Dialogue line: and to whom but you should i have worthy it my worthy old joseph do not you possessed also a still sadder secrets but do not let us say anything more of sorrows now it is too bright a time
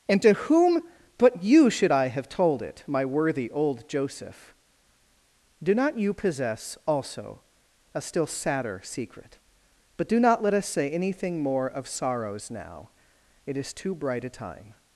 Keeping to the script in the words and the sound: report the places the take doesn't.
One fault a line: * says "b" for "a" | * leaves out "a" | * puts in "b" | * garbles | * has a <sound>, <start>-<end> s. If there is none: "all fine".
* says "told" for "worthy"
* says "possess" for "possessed"
* says "secret" for "secrets"